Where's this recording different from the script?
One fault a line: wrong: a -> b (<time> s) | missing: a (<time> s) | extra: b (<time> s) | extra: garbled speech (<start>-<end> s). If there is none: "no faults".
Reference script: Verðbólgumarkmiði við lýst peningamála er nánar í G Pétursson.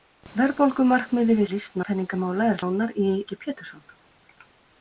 no faults